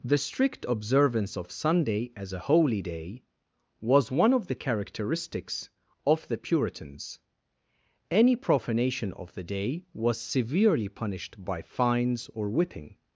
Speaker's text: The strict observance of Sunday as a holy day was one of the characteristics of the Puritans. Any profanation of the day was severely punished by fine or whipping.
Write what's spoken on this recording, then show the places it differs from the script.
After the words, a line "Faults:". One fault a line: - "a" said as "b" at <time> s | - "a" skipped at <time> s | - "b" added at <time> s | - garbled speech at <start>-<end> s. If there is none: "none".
The strict observance of Sunday as a holy day was one of the characteristics of the Puritans. Any profanation of the day was severely punished by fines or whipping.
Faults:
- "fine" said as "fines" at 11.6 s